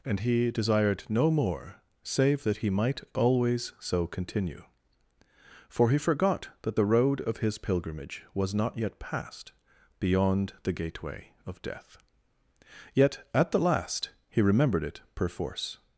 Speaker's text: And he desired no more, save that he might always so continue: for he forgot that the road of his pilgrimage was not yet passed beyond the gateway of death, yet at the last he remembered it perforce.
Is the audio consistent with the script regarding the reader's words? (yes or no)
yes